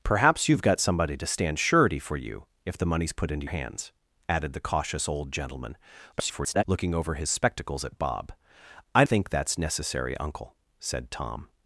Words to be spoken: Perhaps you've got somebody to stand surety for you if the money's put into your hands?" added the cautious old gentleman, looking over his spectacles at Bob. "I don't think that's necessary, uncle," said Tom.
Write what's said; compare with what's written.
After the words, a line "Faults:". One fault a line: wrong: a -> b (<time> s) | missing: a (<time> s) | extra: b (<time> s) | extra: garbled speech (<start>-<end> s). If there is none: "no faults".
Perhaps you've got somebody to stand surety for you if the money's put into hands?" added the cautious old gentleman, [garbled] looking over his spectacles at Bob. "I think that's necessary, uncle," said Tom.
Faults:
missing: your (3.5 s)
extra: garbled speech (6.1-6.6 s)
missing: don't (9.1 s)